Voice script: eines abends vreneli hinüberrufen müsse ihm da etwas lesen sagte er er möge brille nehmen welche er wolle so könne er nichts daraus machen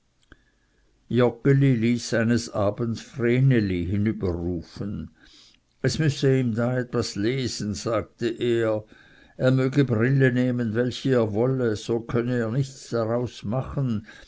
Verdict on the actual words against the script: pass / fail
fail